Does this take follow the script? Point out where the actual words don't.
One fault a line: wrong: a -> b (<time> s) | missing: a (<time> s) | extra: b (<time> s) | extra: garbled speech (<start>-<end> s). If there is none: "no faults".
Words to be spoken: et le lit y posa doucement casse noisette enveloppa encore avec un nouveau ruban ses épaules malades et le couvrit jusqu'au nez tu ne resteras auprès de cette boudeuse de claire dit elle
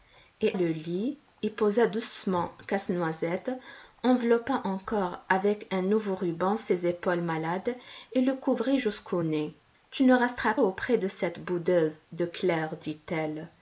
no faults